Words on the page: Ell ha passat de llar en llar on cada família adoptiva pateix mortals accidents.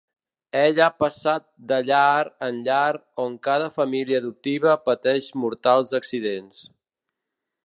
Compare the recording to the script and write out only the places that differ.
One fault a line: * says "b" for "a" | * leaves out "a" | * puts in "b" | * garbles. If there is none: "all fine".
all fine